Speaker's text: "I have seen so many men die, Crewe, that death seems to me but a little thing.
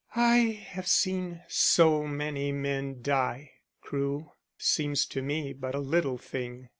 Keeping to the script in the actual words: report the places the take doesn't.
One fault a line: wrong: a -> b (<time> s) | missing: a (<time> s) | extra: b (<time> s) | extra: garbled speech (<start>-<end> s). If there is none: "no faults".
missing: that death (4.3 s)